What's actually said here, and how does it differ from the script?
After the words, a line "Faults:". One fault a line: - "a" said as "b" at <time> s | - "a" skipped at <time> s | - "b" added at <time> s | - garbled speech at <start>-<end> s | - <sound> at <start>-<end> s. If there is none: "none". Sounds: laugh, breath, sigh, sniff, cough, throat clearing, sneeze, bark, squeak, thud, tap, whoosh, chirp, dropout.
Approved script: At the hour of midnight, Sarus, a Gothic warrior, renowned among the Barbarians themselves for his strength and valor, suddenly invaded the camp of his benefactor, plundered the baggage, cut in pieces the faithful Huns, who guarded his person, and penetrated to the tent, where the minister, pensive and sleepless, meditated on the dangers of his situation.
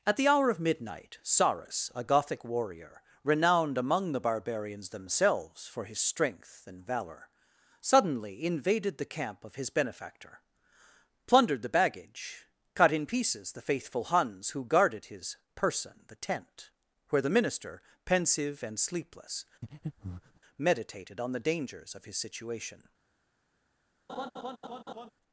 At the hour of midnight, Sarus, a Gothic warrior, renowned among the Barbarians themselves for his strength and valor, suddenly invaded the camp of his benefactor, plundered the baggage, cut in pieces the faithful Huns, who guarded his person, the tent, where the minister, pensive and sleepless, meditated on the dangers of his situation.
Faults:
- "and penetrated to" skipped at 16.0 s
- breath at 19.6-20.4 s
- laugh at 24.1-25.1 s